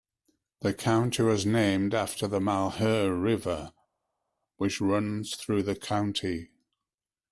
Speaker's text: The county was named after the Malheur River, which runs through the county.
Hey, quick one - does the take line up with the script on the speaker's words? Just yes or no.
yes